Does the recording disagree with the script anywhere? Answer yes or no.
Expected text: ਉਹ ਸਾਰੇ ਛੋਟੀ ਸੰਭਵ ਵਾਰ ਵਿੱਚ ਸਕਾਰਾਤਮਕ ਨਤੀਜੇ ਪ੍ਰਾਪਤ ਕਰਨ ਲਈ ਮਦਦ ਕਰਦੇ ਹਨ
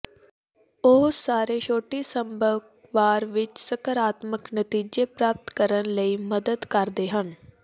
no